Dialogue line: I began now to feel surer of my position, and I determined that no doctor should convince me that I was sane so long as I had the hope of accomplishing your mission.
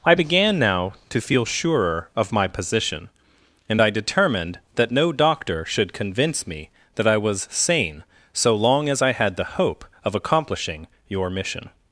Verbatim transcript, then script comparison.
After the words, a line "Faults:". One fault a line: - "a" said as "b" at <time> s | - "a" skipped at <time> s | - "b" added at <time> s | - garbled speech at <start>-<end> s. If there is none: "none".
I began now to feel surer of my position, and I determined that no doctor should convince me that I was sane so long as I had the hope of accomplishing your mission.
Faults:
none